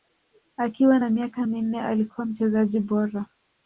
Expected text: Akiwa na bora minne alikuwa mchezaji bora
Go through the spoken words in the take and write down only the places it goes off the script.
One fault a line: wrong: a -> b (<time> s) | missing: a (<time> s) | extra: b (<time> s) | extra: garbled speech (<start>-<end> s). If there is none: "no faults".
wrong: bora -> miaka (1.1 s)